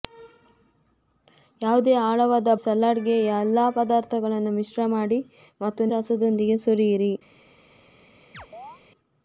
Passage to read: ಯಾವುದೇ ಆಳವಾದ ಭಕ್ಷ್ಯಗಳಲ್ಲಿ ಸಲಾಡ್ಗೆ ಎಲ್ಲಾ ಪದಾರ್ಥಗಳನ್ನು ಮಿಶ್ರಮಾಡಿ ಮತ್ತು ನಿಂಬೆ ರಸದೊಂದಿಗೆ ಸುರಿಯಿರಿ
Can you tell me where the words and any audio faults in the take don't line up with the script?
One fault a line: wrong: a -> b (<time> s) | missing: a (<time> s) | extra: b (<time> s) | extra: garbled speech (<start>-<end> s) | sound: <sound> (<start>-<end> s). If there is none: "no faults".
missing: ಭಕ್ಷ್ಯಗಳಲ್ಲಿ (2.5 s)
missing: ನಿಂಬೆ (5.9 s)
sound: chirp (8.3-8.8 s)